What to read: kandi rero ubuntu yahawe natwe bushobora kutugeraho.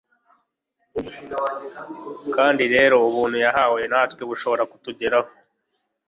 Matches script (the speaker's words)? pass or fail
pass